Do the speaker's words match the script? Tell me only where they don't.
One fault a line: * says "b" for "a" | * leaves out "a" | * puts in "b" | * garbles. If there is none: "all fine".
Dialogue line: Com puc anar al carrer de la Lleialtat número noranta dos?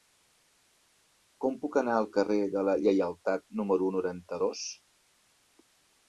all fine